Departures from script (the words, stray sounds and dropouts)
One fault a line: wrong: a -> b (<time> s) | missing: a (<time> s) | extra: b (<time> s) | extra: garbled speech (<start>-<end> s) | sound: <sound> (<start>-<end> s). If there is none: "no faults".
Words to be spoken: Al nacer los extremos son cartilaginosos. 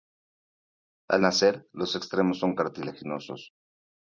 no faults